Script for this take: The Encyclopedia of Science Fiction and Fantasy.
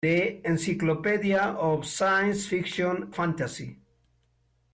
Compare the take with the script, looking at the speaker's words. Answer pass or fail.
fail